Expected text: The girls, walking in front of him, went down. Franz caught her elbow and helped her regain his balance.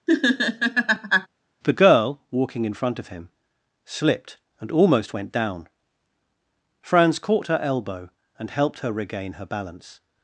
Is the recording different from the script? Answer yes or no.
yes